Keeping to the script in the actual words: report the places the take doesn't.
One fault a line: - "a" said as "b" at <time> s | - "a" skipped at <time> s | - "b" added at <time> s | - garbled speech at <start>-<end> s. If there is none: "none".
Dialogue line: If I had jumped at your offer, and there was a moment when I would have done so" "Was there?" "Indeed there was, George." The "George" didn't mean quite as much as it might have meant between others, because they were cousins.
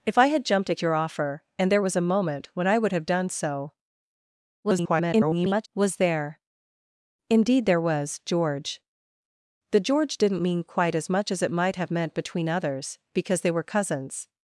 - garbled speech at 4.6-5.7 s